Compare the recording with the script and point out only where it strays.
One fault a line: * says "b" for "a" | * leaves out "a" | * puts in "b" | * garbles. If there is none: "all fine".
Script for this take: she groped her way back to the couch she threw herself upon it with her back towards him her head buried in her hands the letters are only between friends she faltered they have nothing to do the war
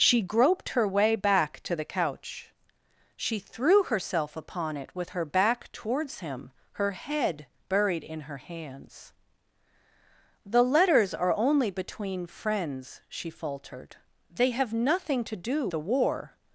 all fine